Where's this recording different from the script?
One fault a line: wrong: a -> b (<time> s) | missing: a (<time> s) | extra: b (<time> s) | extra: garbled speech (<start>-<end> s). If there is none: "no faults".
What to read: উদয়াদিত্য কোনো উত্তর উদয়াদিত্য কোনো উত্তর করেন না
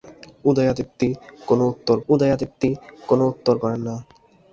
no faults